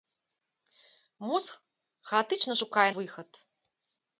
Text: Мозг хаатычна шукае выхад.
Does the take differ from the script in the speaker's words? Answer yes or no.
no